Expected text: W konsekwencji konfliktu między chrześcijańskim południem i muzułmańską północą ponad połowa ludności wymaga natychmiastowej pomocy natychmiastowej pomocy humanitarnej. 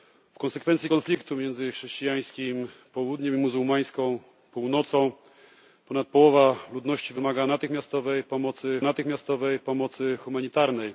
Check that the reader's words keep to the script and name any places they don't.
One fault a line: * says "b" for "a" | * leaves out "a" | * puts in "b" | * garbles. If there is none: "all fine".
all fine